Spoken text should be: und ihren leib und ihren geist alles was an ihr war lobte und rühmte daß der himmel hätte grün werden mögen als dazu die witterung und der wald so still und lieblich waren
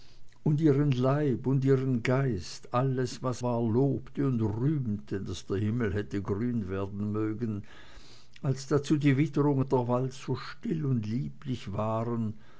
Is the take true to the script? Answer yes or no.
no